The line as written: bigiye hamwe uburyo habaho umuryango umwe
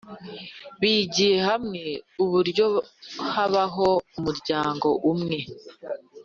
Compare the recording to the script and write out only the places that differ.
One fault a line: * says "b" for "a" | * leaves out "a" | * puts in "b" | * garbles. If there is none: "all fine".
all fine